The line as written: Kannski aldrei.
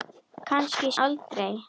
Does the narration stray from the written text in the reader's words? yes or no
no